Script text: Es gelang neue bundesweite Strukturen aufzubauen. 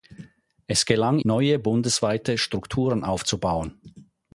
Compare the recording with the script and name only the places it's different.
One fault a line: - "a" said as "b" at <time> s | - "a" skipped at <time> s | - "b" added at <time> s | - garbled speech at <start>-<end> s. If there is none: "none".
none